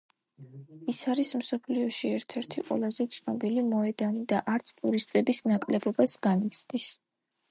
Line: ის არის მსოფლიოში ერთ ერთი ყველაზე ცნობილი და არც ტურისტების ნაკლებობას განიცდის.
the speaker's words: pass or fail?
fail